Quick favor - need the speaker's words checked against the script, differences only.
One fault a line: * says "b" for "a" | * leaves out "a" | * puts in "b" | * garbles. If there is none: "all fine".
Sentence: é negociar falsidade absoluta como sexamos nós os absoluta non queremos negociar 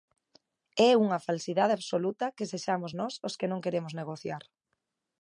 * says "unha" for "negociar"
* says "que" for "como"
* says "que" for "absoluta"